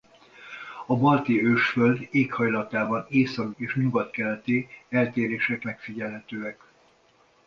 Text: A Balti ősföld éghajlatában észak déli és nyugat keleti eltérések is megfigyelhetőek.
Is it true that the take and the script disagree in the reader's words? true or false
true